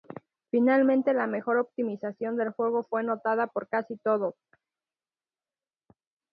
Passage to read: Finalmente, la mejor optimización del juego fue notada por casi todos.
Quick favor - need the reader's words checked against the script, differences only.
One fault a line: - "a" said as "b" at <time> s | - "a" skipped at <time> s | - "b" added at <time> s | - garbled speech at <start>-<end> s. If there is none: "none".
none